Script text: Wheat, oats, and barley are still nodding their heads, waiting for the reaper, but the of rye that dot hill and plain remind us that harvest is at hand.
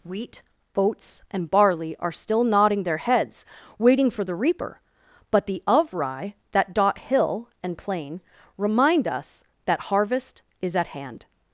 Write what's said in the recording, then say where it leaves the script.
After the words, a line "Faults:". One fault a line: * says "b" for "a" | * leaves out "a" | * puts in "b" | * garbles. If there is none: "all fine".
Wheat, oats, and barley are still nodding their heads, waiting for the reaper, but the of rye that dot hill and plain remind us that harvest is at hand.
Faults:
all fine